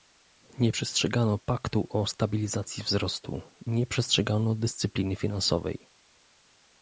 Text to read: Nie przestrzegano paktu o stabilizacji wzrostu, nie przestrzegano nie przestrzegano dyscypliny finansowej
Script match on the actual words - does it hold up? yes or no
no